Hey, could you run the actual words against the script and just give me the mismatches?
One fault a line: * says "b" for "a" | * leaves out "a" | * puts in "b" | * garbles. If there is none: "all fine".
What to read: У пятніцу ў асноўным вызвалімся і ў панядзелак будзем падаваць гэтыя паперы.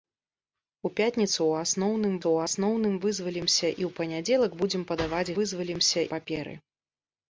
* puts in "ў асноўным"
* says "вызвалімся" for "гэтыя"